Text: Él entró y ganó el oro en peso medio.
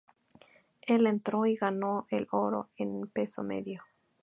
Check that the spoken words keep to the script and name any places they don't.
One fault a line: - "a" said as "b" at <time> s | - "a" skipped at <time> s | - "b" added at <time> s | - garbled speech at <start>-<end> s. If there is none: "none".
none